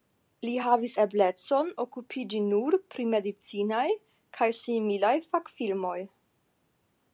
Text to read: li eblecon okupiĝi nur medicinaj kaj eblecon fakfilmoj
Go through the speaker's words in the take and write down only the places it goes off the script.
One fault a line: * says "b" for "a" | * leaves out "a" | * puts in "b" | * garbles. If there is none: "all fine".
* puts in "havis"
* puts in "pri"
* says "similaj" for "eblecon"